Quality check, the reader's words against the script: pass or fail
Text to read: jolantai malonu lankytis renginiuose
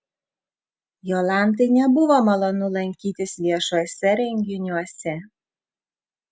fail